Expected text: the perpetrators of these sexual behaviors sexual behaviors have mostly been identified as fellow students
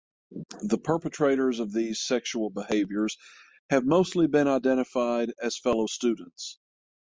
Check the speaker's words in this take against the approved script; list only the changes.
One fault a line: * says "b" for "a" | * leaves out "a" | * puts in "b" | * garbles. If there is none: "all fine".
* leaves out "sexual behaviors"